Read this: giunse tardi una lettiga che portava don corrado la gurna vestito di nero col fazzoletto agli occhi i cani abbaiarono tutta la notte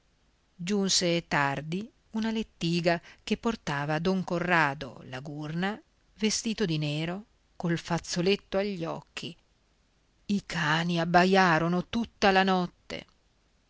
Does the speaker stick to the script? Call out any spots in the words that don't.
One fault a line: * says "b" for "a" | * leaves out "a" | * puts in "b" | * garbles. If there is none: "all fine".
all fine